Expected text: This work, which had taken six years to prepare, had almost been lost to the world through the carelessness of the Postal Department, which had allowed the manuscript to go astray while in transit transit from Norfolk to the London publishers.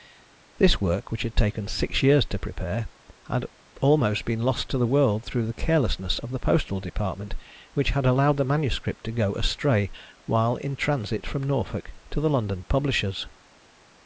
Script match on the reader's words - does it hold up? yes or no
no